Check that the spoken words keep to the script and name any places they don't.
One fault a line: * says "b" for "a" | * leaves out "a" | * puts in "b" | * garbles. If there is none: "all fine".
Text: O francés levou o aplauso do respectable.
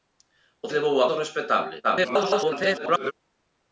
* leaves out "francés"
* leaves out "aplauso"
* garbles